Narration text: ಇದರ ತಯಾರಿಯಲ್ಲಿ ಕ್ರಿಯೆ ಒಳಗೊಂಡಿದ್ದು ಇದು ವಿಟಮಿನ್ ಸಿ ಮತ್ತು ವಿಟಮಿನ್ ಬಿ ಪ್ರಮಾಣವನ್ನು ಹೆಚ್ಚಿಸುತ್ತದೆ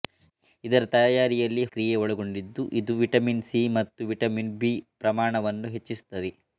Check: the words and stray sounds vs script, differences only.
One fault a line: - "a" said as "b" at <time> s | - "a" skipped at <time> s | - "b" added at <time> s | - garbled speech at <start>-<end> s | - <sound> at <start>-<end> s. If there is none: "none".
none